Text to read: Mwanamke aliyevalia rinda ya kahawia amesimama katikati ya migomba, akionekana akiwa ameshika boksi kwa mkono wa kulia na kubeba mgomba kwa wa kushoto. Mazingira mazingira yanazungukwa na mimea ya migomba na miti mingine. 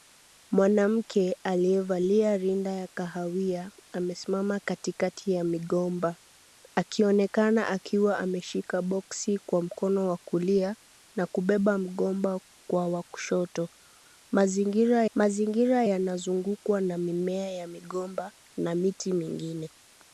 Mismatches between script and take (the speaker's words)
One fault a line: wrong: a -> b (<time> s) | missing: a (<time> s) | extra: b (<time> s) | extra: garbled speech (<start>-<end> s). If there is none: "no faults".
no faults